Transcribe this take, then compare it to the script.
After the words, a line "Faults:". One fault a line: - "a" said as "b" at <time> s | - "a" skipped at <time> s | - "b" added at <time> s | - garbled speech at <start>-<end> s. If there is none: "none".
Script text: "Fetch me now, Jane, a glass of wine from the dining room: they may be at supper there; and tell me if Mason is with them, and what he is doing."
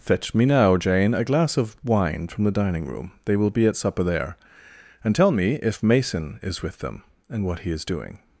"Fetch me now, Jane, a glass of wine from the dining room: they will be at supper there; and tell me if Mason is with them, and what he is doing."
Faults:
- "may" said as "will" at 3.4 s